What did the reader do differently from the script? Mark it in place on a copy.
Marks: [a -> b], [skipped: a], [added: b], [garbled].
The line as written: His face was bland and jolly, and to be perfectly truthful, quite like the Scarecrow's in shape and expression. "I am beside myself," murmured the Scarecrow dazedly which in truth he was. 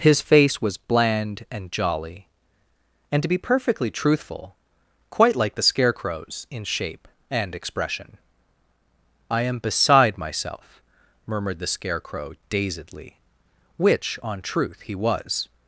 His face was bland and jolly, and to be perfectly truthful, quite like the Scarecrow's in shape and expression. "I am beside myself," murmured the Scarecrow dazedly which [in -> on] truth he was.